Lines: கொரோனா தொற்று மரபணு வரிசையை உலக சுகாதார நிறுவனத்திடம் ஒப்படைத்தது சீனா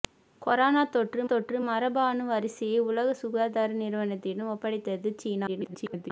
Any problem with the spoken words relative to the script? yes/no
yes